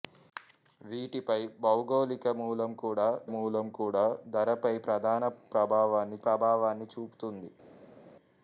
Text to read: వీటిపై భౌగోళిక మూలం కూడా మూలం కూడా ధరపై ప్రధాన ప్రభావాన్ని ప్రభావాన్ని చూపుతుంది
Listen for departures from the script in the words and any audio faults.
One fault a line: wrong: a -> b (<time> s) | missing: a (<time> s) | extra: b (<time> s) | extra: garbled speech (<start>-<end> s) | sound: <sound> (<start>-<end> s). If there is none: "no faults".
no faults